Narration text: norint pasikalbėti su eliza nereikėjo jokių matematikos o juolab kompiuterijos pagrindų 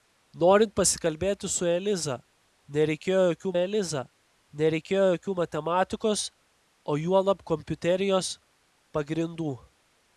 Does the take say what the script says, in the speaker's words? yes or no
no